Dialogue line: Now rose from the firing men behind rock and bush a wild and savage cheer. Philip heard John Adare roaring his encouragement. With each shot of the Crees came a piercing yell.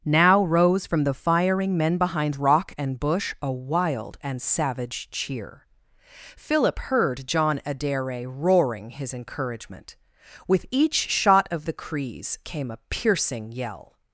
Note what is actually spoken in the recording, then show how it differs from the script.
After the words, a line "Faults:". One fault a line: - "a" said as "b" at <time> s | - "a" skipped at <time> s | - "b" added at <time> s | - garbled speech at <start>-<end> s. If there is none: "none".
Now rose from the firing men behind rock and bush a wild and savage cheer. Philip heard John Adare roaring his encouragement. With each shot of the Crees came a piercing yell.
Faults:
none